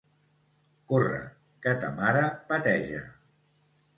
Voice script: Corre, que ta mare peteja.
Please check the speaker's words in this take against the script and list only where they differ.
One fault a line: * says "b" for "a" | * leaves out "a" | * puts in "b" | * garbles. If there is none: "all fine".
all fine